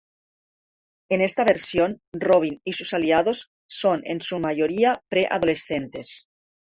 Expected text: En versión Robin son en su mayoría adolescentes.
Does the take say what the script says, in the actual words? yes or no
no